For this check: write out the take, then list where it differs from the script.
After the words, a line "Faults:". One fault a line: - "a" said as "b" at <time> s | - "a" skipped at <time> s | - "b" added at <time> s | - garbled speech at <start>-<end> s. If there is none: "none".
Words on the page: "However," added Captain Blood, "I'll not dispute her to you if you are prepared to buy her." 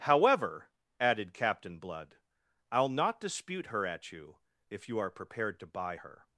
"However," added Captain Blood, "I'll not dispute her at you if you are prepared to buy her."
Faults:
- "to" said as "at" at 3.9 s